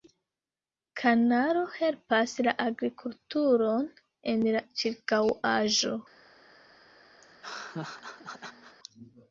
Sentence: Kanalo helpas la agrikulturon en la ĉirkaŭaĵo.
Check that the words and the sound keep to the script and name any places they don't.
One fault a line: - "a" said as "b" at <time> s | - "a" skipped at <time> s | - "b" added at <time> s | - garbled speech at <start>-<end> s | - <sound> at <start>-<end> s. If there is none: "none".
- laugh at 7.2-8.8 s